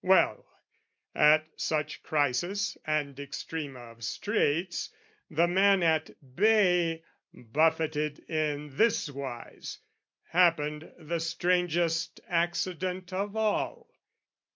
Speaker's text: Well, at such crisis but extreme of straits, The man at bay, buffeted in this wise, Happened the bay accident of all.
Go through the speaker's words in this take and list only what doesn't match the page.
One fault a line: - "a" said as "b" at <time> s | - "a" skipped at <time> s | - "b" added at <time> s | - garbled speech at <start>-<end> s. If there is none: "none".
- "but" said as "and" at 2.9 s
- "bay" said as "strangest" at 11.2 s